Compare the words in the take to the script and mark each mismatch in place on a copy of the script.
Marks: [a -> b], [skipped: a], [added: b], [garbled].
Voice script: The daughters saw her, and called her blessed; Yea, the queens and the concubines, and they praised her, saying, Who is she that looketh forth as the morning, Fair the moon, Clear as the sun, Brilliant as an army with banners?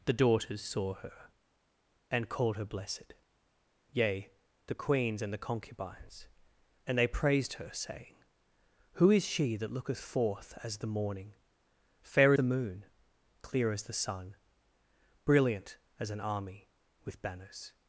The daughters saw her, and called her blessed; Yea, the queens and the concubines, and they praised her, saying, Who is she that looketh forth as the morning, Fair the moon, Clear as the sun, Brilliant as an army with banners?